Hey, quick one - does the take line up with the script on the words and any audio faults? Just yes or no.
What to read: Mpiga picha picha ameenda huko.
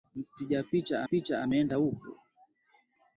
yes